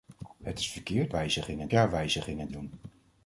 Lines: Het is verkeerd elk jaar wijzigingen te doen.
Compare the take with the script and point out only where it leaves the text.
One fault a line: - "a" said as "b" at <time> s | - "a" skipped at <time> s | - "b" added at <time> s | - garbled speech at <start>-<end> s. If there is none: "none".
- "elk" said as "wijzigingen" at 1.1 s
- "te" skipped at 2.5 s